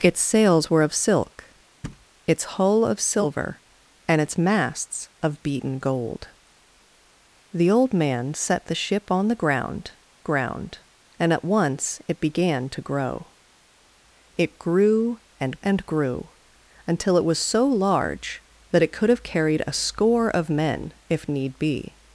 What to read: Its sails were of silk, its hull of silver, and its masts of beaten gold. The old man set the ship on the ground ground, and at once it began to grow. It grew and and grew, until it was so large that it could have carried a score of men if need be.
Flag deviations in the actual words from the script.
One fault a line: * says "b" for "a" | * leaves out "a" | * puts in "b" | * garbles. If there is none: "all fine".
all fine